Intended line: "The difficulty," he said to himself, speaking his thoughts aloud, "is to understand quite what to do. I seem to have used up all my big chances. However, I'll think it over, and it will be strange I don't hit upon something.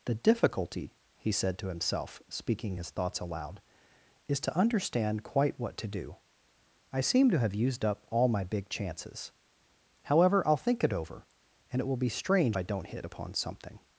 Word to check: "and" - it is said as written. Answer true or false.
true